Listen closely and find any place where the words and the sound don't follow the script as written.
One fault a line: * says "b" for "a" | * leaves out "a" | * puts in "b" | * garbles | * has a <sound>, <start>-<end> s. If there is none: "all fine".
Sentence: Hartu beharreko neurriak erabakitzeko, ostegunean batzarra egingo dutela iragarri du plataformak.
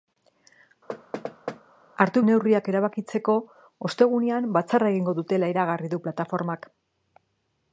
* has a thud, 0.9-1.6 s
* leaves out "beharreko"